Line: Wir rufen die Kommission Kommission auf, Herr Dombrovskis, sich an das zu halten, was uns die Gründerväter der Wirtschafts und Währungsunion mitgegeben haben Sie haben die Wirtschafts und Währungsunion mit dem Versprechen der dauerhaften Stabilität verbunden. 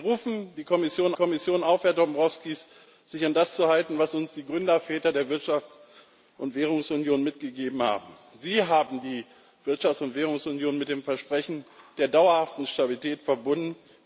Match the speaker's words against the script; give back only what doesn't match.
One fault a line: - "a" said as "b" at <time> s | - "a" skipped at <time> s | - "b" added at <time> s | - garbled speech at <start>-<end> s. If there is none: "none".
none